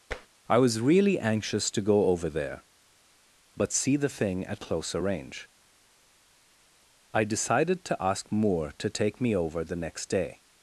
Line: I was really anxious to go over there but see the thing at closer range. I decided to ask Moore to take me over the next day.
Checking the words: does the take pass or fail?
pass